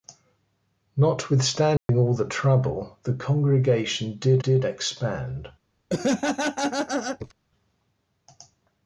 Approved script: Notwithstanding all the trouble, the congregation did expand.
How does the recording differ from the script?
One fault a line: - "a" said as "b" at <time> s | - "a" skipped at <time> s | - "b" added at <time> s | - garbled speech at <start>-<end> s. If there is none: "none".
- "did" added at 4.4 s